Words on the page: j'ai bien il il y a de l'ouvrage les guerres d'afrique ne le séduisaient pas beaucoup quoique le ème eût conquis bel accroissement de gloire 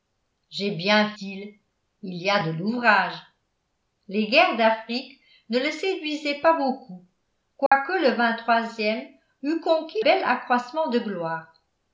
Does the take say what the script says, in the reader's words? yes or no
yes